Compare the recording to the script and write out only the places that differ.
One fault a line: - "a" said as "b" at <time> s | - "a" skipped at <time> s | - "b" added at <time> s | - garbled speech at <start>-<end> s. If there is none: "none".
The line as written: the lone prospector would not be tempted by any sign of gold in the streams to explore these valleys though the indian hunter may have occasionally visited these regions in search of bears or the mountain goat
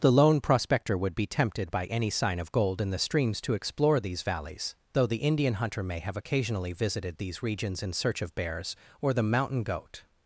- "not" skipped at 1.2 s